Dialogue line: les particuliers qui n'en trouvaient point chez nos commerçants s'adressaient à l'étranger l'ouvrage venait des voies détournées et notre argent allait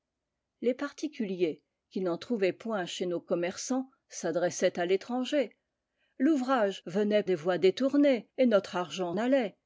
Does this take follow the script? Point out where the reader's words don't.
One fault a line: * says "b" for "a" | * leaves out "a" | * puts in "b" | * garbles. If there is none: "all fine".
all fine